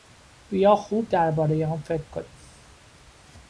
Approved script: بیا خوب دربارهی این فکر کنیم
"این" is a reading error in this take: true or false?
true